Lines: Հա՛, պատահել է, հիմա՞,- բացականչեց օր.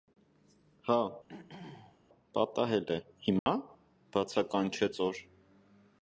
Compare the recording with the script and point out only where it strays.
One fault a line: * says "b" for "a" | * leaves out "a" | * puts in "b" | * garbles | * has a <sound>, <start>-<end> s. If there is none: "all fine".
* has a throat clearing, 1.3-2.0 s
* has a dropout, 3.4-3.5 s